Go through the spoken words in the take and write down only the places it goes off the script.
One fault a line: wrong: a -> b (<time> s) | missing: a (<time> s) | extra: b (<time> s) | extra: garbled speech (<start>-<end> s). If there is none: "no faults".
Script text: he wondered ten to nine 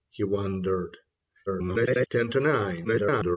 extra: garbled speech (1.5-2.1 s)
extra: garbled speech (2.8-3.4 s)